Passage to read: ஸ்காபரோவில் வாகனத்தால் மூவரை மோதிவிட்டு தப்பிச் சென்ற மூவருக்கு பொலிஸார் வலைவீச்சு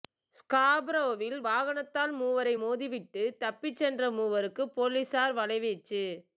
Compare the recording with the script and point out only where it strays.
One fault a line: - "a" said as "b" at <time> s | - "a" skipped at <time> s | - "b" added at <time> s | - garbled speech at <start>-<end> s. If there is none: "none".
none